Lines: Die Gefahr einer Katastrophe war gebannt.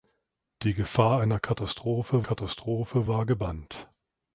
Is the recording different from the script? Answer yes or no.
yes